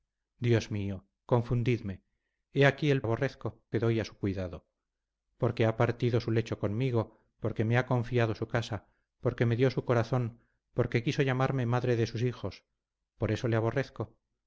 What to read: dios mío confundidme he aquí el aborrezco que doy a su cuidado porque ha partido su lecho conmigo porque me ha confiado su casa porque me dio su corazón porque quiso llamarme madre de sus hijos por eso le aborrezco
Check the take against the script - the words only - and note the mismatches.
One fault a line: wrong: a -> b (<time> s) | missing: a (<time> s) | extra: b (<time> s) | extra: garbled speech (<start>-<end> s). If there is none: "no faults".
no faults